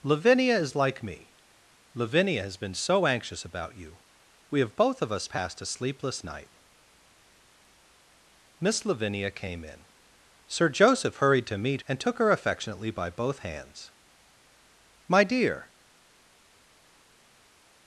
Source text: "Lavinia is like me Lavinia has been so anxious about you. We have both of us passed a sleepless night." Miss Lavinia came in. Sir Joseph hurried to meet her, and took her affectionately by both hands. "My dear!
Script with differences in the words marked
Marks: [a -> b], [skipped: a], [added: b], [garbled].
"Lavinia is like me Lavinia has been so anxious about you. We have both of us passed a sleepless night." Miss Lavinia came in. Sir Joseph hurried to meet [skipped: her,] and took her affectionately by both hands. "My dear!